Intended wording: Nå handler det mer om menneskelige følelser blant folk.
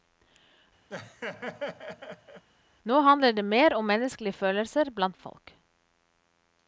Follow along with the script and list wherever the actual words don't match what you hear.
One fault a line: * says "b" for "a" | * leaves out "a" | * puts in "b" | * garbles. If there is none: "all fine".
all fine